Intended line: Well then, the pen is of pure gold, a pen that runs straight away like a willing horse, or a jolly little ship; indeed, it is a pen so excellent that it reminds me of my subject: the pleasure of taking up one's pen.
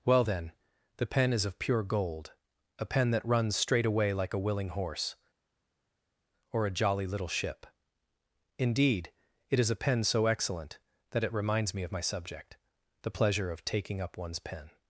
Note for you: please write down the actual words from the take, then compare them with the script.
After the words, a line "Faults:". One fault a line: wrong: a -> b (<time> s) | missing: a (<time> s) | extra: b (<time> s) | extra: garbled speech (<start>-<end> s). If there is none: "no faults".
Well then, the pen is of pure gold, a pen that runs straight away like a willing horse, or a jolly little ship; indeed, it is a pen so excellent that it reminds me of my subject: the pleasure of taking up one's pen.
Faults:
no faults